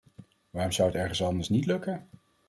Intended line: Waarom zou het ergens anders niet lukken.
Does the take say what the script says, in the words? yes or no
yes